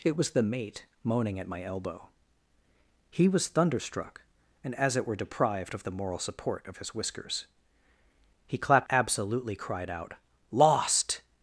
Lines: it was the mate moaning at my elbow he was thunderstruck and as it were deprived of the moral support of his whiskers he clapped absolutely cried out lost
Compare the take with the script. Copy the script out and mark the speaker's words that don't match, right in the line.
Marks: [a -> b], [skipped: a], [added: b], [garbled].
it was the mate moaning at my elbow he was thunderstruck and as it were deprived of the moral support of his whiskers he clapped absolutely cried out lost